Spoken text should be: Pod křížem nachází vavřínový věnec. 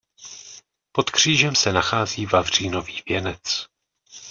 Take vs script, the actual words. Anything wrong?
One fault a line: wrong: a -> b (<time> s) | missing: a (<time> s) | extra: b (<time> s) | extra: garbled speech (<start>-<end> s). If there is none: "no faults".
extra: se (1.5 s)